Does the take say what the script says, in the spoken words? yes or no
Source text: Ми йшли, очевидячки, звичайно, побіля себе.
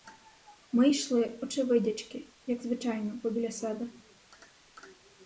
no